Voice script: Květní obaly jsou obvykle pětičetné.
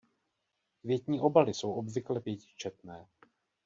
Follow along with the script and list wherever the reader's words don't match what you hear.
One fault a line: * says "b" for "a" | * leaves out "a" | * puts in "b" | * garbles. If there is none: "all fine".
all fine